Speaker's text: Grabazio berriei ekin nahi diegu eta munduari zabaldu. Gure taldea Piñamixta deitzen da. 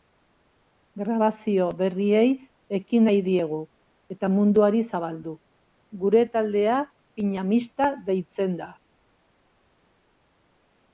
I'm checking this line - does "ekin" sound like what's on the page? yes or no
yes